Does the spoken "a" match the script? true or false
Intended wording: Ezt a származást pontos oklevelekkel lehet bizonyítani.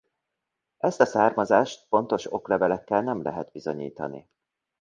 true